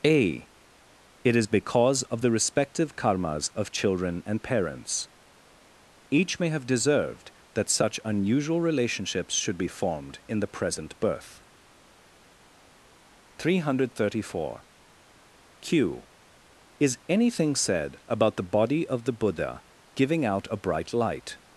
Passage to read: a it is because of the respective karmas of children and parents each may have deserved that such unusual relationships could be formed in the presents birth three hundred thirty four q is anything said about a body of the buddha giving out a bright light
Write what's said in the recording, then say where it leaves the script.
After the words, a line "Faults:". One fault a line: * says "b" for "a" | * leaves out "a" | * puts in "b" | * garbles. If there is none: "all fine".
a it is because of the respective karmas of children and parents each may have deserved that such unusual relationships should be formed in the present birth three hundred thirty four q is anything said about the body of the buddha giving out a bright light
Faults:
* says "should" for "could"
* says "present" for "presents"
* says "the" for "a"